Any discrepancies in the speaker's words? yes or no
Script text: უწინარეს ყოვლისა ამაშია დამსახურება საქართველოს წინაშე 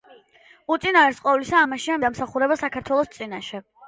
no